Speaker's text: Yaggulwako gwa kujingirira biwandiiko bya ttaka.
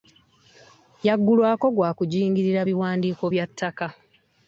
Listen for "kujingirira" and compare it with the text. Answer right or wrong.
right